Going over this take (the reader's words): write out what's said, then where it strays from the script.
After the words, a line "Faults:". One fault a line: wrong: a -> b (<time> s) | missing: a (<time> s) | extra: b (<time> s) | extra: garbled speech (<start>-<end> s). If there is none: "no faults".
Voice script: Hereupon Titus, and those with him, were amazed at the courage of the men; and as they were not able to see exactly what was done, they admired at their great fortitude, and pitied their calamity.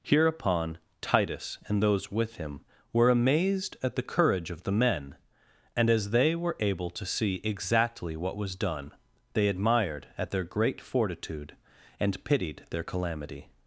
Hereupon Titus, and those with him, were amazed at the courage of the men; and as they were able to see exactly what was done, they admired at their great fortitude, and pitied their calamity.
Faults:
missing: not (6.6 s)